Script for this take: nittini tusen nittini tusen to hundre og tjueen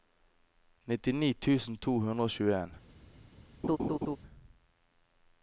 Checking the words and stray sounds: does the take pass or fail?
fail